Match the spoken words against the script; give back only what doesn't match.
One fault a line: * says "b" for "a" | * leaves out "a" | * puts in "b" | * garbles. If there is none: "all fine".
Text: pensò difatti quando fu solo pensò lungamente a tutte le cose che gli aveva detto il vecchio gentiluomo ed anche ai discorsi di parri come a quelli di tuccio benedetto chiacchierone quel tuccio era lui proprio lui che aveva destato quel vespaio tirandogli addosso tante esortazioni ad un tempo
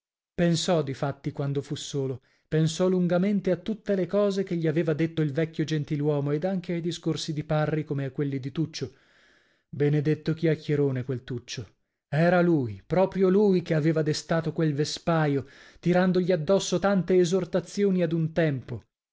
all fine